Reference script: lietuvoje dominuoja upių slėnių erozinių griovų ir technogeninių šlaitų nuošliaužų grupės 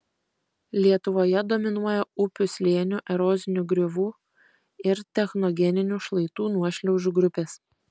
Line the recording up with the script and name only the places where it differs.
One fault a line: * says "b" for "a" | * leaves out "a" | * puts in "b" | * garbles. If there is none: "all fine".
all fine